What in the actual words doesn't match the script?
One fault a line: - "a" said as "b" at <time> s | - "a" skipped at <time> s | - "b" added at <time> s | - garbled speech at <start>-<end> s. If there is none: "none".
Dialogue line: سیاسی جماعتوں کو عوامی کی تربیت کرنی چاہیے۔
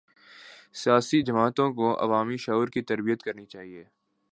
- "شعور" added at 2.4 s